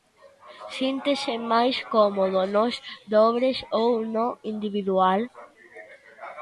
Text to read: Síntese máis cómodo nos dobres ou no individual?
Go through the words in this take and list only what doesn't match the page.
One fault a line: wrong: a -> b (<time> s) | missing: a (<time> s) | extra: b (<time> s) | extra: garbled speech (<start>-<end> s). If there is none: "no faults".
no faults